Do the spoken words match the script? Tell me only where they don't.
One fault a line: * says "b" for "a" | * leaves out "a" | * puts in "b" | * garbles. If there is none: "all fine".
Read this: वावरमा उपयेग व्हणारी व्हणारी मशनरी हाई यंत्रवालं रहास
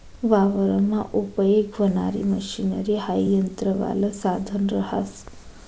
* leaves out "व्हणारी"
* puts in "साधन"